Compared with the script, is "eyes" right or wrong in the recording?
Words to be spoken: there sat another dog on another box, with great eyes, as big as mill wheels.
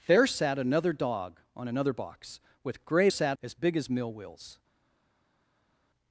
wrong